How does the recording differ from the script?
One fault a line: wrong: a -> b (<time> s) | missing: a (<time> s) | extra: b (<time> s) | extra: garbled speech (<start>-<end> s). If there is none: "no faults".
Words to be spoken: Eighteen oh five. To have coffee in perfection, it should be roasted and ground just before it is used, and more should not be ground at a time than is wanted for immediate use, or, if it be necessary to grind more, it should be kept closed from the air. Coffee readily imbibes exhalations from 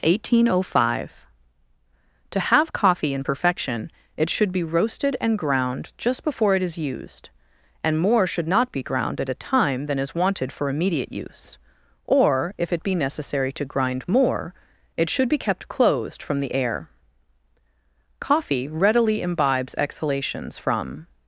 no faults